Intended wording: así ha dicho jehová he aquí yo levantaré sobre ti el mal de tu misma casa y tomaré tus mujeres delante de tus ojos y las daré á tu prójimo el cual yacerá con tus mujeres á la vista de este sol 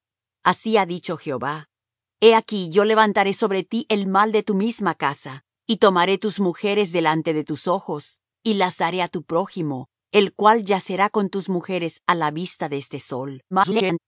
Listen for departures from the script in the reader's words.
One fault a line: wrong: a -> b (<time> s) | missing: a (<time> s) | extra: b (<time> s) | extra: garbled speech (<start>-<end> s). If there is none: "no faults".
extra: garbled speech (13.5-14.0 s)